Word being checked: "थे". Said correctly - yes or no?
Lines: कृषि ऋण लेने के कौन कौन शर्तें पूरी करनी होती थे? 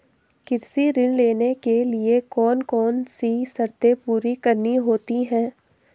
no